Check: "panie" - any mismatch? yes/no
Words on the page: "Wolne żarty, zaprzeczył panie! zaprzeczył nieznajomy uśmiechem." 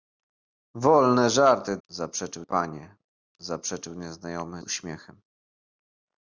no